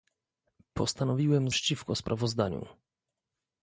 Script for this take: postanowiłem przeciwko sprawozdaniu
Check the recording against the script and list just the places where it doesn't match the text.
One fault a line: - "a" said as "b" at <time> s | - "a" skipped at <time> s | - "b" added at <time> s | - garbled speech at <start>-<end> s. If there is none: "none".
none